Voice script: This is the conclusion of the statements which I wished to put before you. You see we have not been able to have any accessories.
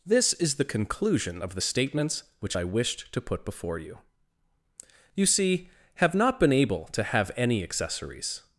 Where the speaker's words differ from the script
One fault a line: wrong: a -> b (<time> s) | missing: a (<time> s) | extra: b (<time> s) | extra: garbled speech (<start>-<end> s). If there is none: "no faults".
missing: we (5.7 s)